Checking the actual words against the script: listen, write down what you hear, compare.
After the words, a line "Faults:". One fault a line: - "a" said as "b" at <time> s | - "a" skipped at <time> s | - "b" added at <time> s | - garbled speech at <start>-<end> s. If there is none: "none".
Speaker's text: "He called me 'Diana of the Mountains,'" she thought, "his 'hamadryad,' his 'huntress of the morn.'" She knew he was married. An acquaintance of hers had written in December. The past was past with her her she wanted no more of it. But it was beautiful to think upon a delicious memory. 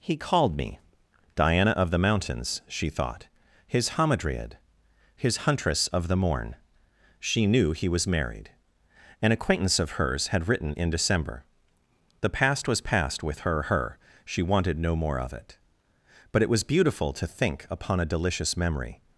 "He called me 'Diana of the Mountains,'" she thought, "his 'hamadryad,' his 'huntress of the morn.'" She knew he was married. An acquaintance of hers had written in December. The past was past with her her she wanted no more of it. But it was beautiful to think upon a delicious memory.
Faults:
none